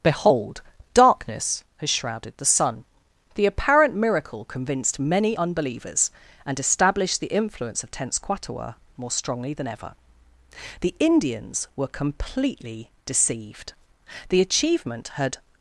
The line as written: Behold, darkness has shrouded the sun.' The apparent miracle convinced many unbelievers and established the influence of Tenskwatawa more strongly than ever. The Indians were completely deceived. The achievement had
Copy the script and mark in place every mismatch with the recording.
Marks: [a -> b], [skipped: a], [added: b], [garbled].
Behold, darkness has shrouded the sun.' The apparent miracle convinced many unbelievers and established the influence of Tenskwatawa more strongly than ever. The Indians were completely deceived. The achievement had